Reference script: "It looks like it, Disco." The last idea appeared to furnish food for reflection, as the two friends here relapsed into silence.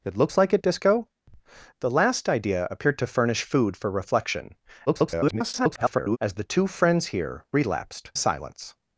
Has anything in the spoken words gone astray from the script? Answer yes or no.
yes